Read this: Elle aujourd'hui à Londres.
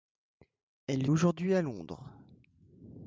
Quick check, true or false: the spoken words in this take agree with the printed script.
true